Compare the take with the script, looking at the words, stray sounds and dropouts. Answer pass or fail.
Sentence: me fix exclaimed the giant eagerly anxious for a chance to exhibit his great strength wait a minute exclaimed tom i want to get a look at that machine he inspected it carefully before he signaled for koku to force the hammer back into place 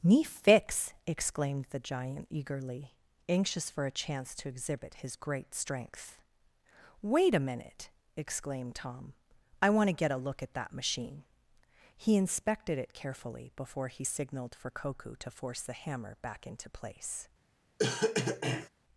fail